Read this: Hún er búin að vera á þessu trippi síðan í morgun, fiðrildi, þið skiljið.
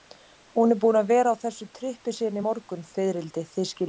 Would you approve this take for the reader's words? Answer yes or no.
yes